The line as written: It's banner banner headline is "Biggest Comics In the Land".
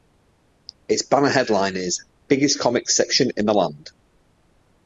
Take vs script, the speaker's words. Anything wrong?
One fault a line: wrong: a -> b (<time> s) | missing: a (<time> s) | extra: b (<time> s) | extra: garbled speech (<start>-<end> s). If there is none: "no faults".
missing: banner (1.3 s)
extra: Section (3.0 s)